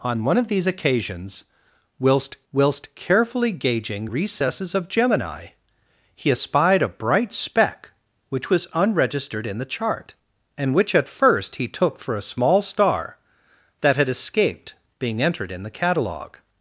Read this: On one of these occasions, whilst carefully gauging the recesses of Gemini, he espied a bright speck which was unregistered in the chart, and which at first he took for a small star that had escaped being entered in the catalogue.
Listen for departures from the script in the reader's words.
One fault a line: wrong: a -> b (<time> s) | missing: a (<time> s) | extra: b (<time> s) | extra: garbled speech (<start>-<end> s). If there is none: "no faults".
extra: whilst (2.5 s)
missing: the (4.1 s)